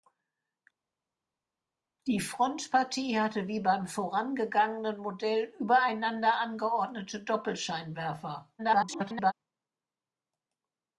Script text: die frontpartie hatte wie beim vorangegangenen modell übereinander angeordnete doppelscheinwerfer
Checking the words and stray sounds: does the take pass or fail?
fail